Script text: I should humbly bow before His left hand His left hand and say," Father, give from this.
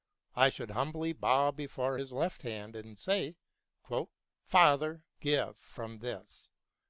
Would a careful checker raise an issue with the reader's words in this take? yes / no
yes